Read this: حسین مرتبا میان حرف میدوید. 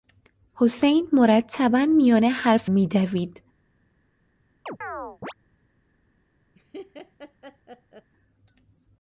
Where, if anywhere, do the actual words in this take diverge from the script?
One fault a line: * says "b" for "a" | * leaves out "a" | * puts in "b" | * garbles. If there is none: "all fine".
all fine